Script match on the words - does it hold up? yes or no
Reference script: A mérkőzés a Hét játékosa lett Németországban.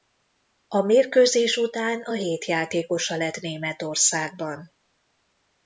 no